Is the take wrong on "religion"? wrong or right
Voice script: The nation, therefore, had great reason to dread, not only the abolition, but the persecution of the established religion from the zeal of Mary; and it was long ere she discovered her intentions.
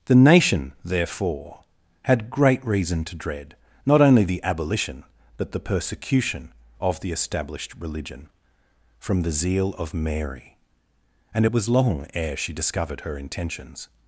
right